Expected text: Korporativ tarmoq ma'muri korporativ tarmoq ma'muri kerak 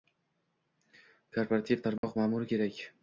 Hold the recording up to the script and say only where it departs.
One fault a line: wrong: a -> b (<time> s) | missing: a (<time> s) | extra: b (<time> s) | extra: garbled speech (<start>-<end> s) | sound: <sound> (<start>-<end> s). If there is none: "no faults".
sound: dropout (2.0-2.0 s)
missing: korporativ tarmoq ma'muri (2.5 s)